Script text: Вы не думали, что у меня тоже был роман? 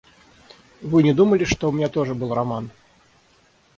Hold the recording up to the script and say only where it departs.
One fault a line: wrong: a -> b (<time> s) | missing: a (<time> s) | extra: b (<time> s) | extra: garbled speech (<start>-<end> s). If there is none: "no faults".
no faults